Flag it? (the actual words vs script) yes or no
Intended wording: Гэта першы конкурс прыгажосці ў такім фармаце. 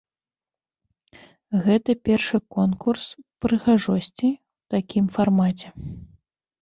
no